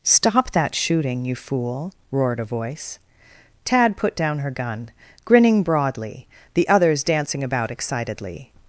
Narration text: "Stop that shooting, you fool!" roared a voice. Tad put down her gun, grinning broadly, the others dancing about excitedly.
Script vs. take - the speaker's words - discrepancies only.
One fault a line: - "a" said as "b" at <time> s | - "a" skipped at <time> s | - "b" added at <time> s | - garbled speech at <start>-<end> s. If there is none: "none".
none